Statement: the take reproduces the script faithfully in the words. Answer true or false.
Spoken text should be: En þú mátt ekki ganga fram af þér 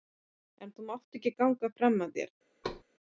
true